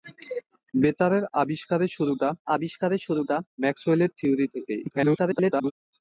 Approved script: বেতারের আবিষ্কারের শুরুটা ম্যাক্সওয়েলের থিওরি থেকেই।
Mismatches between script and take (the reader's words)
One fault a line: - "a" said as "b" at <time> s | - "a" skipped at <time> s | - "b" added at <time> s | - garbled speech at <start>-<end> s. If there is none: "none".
- "আবিষ্কারের শুরুটা" added at 2.5 s
- garbled speech at 4.9-5.7 s